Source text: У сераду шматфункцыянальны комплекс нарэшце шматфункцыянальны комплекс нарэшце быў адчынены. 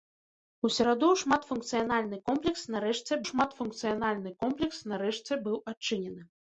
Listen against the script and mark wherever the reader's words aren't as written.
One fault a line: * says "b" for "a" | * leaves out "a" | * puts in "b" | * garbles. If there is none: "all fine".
all fine